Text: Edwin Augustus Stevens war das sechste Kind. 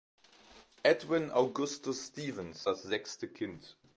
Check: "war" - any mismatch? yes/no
yes